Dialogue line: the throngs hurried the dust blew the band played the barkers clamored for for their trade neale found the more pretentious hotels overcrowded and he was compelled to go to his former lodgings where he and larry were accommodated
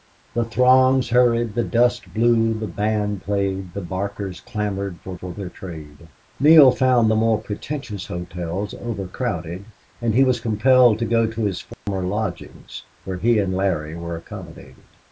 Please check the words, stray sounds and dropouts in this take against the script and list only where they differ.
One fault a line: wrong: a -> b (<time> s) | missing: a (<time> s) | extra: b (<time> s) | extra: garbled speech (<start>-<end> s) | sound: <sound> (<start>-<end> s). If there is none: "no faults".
sound: dropout (11.7-11.9 s)